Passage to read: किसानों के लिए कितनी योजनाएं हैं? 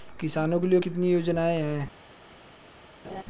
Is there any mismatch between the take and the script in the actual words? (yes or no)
no